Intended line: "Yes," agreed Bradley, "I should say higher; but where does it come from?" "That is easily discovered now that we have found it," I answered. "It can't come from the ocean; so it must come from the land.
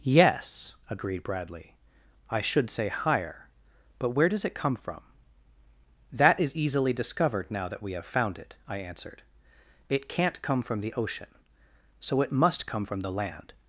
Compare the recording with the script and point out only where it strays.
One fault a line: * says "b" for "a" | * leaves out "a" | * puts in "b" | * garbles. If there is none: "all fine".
all fine